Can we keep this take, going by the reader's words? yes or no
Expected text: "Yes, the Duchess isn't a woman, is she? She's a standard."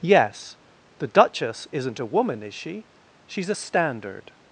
yes